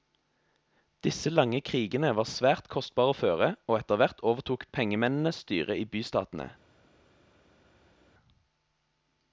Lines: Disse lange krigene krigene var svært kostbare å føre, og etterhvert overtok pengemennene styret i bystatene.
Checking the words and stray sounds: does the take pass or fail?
fail